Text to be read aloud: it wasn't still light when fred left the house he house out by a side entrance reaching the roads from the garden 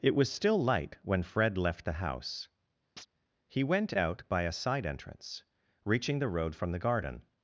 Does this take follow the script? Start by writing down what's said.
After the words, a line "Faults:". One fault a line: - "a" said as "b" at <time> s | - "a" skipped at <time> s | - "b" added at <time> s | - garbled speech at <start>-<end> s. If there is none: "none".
it was still light when fred left the house he went out by a side entrance reaching the road from the garden
Faults:
- "wasn't" said as "was" at 0.1 s
- "house" said as "went" at 3.6 s
- "roads" said as "road" at 6.3 s